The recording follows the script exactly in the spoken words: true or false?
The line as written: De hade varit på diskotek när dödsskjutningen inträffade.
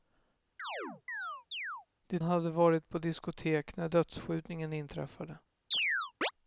true